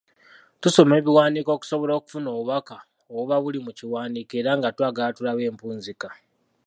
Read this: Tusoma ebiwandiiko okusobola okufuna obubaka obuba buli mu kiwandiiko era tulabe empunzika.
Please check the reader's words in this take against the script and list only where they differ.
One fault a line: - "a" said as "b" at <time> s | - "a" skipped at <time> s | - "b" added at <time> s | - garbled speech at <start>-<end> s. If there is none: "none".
- "nga twagala" added at 4.6 s